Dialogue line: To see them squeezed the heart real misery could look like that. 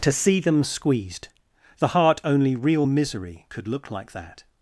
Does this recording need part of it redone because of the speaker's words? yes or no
yes